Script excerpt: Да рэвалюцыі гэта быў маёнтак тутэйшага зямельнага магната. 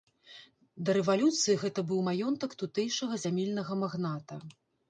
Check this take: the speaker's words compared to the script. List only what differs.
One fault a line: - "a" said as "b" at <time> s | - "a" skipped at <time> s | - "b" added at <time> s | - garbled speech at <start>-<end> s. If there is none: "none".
none